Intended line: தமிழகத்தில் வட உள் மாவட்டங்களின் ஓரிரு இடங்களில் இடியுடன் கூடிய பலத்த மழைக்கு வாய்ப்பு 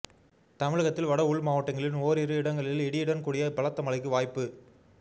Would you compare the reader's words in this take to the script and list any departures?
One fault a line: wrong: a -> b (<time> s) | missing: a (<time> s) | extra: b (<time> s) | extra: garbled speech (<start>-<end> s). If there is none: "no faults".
no faults